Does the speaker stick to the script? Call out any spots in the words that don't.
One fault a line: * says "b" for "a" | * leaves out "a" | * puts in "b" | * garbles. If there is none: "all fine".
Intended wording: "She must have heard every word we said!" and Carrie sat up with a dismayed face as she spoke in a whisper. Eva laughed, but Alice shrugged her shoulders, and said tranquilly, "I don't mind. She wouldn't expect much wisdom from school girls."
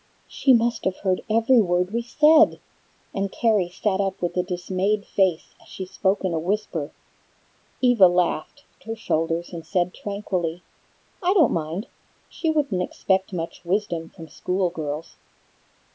* leaves out "but Alice shrugged"